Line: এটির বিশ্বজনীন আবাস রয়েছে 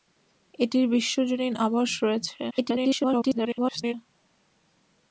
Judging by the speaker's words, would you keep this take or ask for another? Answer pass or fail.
fail